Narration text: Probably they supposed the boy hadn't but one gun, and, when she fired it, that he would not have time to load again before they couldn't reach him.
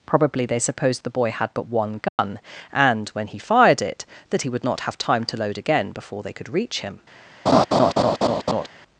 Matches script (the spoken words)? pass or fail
fail